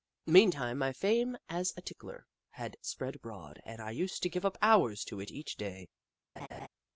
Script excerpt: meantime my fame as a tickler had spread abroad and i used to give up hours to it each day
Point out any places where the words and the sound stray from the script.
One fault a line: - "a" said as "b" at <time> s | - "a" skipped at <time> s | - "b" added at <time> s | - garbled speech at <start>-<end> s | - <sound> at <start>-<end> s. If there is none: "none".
- laugh at 6.4-6.7 s